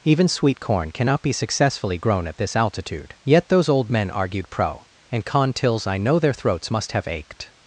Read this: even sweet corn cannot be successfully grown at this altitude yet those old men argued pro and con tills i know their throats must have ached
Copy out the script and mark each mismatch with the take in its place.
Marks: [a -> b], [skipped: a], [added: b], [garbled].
even sweet corn cannot be successfully grown at this altitude yet those old men argued pro and con tills i know their throats must have ached